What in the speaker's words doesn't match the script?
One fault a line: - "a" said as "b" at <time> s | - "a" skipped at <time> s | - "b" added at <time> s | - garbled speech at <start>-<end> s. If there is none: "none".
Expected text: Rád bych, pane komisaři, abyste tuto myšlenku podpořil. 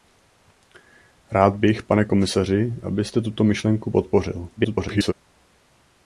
- garbled speech at 4.6-5.1 s